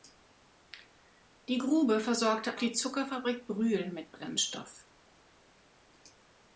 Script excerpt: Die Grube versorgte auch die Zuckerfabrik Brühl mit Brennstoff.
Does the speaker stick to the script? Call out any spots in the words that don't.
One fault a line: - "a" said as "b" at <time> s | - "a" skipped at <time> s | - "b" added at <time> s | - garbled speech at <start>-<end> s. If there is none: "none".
- "auch" skipped at 2.6 s